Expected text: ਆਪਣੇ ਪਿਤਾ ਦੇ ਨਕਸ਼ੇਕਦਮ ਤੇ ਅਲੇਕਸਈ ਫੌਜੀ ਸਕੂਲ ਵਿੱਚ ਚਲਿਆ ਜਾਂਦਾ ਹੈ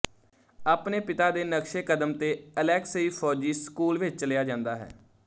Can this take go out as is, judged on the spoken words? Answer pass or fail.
pass